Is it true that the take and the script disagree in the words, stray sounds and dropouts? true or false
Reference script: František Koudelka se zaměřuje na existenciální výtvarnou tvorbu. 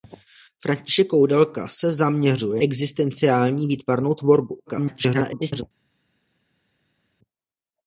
true